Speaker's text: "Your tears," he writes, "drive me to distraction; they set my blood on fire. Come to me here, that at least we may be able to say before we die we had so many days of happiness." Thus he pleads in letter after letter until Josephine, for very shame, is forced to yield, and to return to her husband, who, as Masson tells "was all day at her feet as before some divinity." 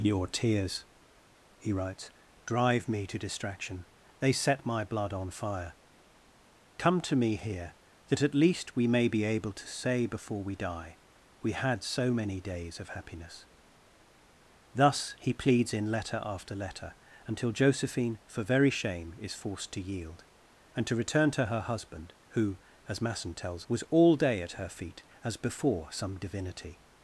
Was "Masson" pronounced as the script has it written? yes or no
yes